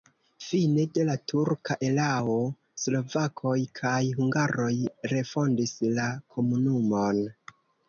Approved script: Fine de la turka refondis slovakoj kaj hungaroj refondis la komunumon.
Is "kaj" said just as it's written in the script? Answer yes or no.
yes